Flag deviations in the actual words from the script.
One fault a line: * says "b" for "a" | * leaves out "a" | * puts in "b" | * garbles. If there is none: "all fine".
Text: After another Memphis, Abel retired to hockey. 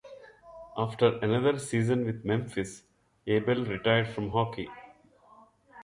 * puts in "season with"
* says "from" for "to"